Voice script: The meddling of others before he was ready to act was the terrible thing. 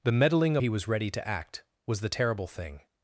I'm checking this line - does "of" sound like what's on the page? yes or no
no